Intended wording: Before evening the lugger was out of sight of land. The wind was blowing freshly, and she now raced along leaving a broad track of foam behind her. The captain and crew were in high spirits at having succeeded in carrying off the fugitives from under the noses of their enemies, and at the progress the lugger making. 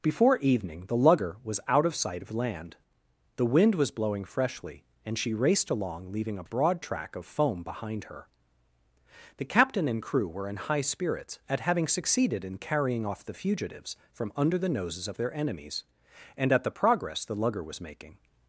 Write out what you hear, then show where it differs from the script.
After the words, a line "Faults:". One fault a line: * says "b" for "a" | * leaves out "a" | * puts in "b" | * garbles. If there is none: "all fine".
Before evening the lugger was out of sight of land. The wind was blowing freshly, and she raced along leaving a broad track of foam behind her. The captain and crew were in high spirits at having succeeded in carrying off the fugitives from under the noses of their enemies, and at the progress the lugger was making.
Faults:
* leaves out "now"
* puts in "was"